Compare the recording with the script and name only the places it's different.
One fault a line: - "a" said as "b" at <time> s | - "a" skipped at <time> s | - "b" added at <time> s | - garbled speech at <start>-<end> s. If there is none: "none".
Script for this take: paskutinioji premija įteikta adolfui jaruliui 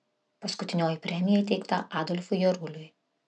none